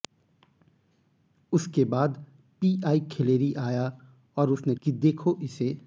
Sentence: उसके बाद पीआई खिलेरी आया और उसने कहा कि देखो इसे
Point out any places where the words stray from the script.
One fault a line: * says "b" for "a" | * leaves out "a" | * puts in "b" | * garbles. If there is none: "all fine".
* leaves out "कहा"